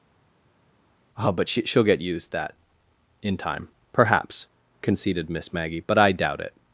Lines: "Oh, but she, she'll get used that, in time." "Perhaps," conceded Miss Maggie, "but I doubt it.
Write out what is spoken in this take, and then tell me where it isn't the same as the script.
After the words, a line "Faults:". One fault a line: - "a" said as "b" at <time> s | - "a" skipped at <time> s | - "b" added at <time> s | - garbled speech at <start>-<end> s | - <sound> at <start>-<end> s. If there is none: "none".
"Oh, but she, she'll get used that, in time." "Perhaps," conceded Miss Maggie, "but I doubt it.
Faults:
none